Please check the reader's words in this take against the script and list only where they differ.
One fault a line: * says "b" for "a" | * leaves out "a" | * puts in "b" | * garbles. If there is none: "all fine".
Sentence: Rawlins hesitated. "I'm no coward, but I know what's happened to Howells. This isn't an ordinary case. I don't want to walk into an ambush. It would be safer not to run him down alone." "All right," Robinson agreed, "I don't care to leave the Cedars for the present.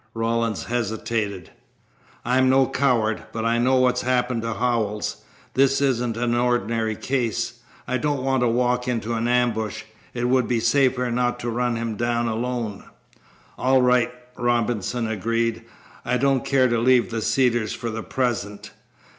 all fine